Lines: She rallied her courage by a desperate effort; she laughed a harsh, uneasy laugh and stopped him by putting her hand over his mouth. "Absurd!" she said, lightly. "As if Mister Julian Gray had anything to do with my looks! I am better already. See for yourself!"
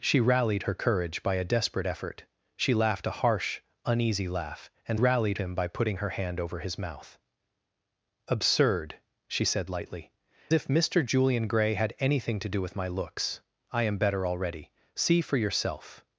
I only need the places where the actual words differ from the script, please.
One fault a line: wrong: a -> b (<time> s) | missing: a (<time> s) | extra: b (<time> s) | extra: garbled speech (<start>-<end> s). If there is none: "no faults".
wrong: stopped -> rallied (4.9 s)
missing: As (10.1 s)